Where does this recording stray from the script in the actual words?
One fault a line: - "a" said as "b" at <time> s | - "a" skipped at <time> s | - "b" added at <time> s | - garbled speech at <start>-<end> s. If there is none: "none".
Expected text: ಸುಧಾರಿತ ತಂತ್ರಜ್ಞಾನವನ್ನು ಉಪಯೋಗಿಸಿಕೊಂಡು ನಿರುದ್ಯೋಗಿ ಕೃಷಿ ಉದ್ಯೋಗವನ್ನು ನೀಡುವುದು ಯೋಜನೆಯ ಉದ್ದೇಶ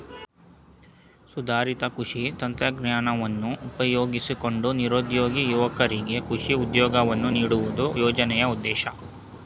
- "ಕೃಷಿ" added at 2.0 s
- "ಯುವಕರಿಗೆ" added at 5.5 s